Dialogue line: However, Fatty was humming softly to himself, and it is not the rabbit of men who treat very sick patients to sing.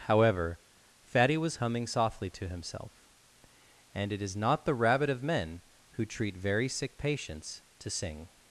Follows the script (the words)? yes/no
yes